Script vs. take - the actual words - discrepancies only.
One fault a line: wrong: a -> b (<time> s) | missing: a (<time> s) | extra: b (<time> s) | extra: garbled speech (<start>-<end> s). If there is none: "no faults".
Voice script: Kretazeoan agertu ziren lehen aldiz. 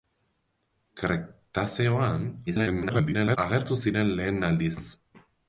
extra: garbled speech (2.5-3.4 s)